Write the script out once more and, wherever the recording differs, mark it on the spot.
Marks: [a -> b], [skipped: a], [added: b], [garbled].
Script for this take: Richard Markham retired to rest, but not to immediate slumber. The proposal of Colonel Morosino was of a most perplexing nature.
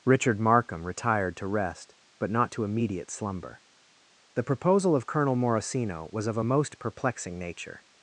Richard Markham retired to rest, but not to immediate slumber. The proposal of Colonel Morosino was of a most perplexing nature.